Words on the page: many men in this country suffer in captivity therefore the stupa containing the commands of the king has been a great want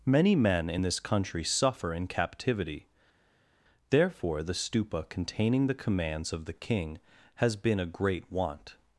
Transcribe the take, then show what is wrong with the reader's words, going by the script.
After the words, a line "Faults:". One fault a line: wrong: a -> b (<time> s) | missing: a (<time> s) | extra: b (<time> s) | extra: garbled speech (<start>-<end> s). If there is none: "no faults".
many men in this country suffer in captivity therefore the stupa containing the commands of the king has been a great want
Faults:
no faults